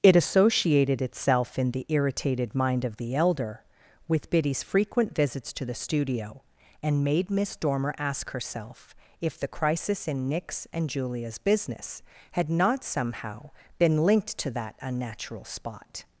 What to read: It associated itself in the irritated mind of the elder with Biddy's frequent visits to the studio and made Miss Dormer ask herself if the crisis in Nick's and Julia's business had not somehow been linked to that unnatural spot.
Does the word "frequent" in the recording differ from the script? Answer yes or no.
no